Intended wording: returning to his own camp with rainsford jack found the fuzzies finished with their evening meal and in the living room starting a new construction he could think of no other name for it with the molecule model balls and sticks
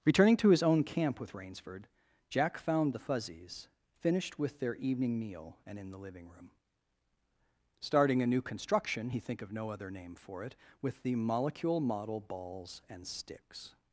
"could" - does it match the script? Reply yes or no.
no